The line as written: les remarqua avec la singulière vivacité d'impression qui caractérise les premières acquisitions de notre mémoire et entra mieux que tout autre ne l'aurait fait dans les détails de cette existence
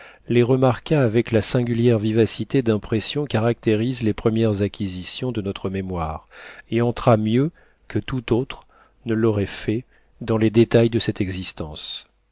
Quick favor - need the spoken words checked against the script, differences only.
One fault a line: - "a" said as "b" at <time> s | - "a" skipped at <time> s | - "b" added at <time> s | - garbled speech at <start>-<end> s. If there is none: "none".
- "qui" skipped at 3.2 s